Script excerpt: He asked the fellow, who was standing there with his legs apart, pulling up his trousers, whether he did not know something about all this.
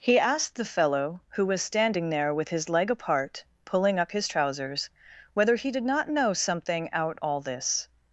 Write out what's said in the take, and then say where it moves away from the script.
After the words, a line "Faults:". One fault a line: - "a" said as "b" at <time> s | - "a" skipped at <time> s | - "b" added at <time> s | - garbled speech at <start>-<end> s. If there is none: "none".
He asked the fellow, who was standing there with his leg apart, pulling up his trousers, whether he did not know something out all this.
Faults:
- "legs" said as "leg" at 2.7 s
- "about" said as "out" at 6.9 s